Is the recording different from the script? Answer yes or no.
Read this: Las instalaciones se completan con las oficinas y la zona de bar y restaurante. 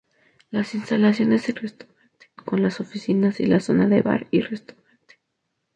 yes